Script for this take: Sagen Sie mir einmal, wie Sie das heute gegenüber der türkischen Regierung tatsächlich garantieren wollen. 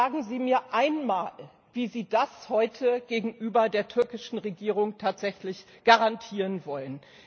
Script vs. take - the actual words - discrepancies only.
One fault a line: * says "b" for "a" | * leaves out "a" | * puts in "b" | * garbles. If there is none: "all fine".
all fine